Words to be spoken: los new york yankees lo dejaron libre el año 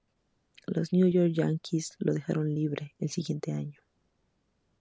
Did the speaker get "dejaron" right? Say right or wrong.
right